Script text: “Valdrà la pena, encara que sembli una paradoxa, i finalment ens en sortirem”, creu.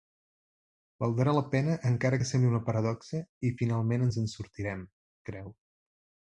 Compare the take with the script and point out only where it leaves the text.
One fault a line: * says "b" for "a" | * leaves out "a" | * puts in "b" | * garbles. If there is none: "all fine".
all fine